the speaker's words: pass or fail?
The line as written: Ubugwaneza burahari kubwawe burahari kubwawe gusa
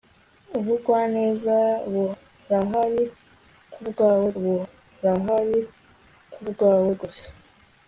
pass